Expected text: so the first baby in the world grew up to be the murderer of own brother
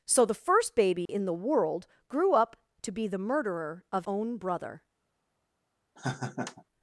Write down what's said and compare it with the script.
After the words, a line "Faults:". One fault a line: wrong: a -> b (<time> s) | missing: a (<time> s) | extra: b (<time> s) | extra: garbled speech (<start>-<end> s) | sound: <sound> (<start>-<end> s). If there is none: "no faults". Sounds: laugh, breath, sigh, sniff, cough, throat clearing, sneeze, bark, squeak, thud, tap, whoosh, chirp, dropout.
so the first baby in the world grew up to be the murderer of own brother
Faults:
sound: dropout (1.1-1.1 s)
sound: laugh (6.0-6.6 s)